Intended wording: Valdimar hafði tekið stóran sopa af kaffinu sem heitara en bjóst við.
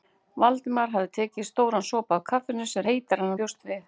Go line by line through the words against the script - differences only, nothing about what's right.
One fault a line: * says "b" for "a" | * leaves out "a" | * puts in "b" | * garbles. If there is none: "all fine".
all fine